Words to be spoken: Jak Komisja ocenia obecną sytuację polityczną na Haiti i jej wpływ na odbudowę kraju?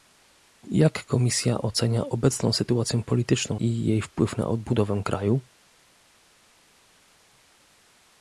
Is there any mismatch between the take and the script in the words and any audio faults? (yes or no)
yes